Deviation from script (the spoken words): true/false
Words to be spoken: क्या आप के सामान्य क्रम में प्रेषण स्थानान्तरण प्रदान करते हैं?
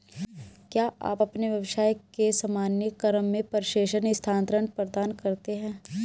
true